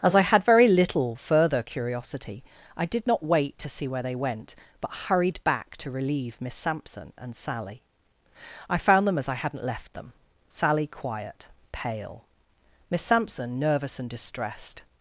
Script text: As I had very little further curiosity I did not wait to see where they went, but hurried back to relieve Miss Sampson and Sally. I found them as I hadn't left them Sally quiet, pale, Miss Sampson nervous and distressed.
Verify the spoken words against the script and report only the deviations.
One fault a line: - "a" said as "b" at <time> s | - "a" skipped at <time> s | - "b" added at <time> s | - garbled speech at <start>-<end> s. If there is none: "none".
none